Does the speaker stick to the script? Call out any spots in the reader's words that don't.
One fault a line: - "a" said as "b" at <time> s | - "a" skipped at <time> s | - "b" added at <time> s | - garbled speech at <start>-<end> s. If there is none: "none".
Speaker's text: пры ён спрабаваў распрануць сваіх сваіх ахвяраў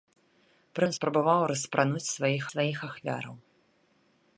none